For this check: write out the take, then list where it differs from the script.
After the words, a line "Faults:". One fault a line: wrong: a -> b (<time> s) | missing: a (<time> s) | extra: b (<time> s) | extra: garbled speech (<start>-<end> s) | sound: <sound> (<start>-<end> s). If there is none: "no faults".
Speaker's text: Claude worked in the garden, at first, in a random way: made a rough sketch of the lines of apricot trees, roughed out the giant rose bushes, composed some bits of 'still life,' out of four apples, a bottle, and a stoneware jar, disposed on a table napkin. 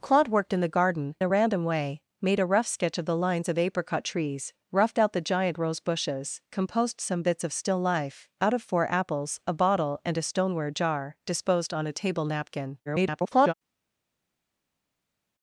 Claude worked in the garden, a random way: made a rough sketch of the lines of apricot trees, roughed out the giant rose bushes, composed some bits of 'still life,' out of four apples, a bottle, and a stoneware jar, disposed on a table napkin. [garbled]
Faults:
missing: at first in (1.1 s)
extra: garbled speech (12.9-13.5 s)